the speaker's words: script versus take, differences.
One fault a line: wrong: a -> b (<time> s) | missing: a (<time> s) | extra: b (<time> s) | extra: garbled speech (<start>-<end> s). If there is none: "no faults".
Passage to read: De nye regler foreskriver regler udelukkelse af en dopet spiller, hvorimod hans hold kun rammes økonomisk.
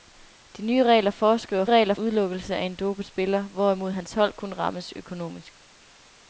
no faults